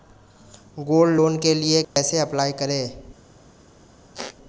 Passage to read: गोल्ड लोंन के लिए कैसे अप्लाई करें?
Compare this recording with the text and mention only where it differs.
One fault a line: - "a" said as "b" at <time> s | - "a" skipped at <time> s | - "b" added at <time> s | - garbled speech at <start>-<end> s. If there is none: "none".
none